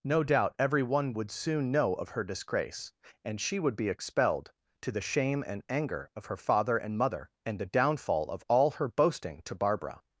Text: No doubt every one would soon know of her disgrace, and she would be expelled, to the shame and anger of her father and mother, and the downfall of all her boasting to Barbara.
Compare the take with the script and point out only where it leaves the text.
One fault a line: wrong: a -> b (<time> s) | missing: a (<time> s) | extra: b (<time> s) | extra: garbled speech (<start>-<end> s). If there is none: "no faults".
no faults